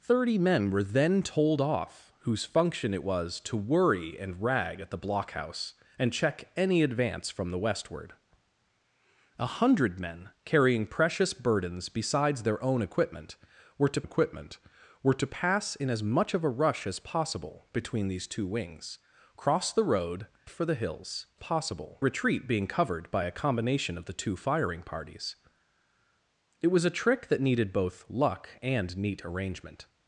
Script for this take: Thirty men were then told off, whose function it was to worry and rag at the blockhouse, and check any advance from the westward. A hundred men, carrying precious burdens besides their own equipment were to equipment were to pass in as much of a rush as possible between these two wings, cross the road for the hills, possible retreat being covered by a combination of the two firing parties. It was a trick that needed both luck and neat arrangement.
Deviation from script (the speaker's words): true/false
false